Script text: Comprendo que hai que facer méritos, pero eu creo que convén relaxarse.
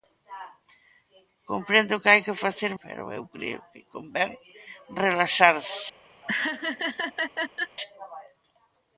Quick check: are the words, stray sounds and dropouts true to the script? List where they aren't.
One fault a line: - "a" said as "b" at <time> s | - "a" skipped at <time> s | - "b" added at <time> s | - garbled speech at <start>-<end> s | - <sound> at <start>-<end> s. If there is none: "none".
- "méritos" skipped at 2.7 s
- laugh at 6.2-7.8 s